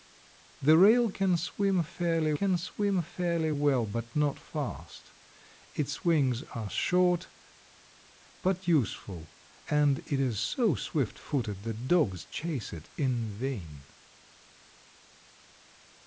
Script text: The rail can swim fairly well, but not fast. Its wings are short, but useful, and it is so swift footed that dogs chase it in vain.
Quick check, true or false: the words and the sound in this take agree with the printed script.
false